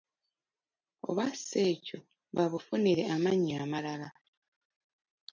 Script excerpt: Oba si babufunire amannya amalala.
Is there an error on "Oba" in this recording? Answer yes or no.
no